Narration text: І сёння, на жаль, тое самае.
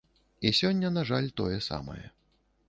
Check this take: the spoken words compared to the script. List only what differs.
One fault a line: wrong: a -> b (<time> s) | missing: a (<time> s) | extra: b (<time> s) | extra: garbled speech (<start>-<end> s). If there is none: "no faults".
no faults